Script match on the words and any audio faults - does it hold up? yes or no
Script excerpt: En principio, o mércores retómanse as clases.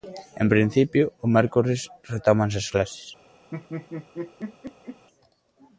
no